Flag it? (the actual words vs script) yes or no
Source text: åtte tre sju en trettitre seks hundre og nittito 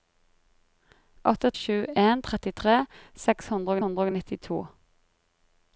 yes